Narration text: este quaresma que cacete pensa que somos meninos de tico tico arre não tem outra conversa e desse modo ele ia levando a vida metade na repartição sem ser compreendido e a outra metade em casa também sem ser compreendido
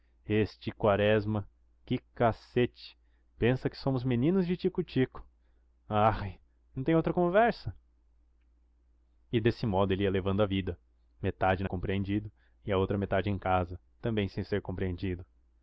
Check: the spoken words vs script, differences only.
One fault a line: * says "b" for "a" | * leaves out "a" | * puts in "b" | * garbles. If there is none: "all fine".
* leaves out "repartição sem ser"